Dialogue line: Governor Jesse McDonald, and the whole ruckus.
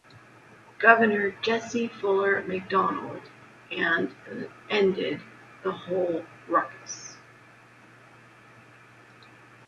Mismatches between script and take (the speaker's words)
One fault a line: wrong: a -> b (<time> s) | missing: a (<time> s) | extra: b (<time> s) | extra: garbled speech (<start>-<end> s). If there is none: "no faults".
extra: Fuller (1.9 s)
extra: ended (4.7 s)